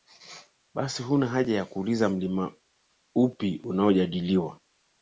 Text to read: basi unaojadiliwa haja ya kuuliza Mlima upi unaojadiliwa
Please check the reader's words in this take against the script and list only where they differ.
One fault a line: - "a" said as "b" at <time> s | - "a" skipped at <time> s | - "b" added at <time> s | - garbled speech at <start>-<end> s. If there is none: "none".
- "unaojadiliwa" said as "huna" at 1.0 s